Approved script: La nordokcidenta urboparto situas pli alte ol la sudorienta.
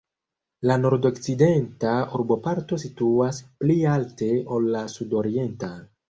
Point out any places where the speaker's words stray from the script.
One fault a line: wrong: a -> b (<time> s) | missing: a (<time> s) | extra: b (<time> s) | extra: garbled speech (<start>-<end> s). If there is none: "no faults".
no faults